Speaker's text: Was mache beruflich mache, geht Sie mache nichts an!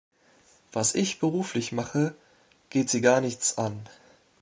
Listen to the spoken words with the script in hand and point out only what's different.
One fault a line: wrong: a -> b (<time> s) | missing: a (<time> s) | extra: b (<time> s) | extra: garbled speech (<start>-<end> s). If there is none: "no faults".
wrong: mache -> ich (0.9 s)
wrong: mache -> gar (3.0 s)